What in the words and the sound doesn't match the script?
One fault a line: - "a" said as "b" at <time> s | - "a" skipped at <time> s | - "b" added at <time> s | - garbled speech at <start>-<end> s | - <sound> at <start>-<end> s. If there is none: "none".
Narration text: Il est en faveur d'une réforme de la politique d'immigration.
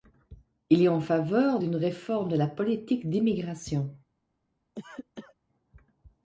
- cough at 4.8-5.4 s